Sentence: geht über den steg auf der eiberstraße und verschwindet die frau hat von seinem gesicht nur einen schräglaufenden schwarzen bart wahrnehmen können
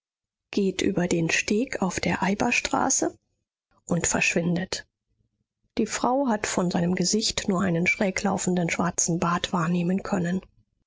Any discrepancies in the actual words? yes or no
no